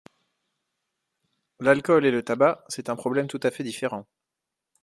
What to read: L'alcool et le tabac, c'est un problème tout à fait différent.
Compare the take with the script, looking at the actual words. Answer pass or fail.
pass